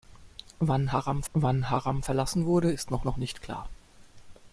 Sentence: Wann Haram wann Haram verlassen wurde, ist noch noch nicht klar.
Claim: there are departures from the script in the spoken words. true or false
false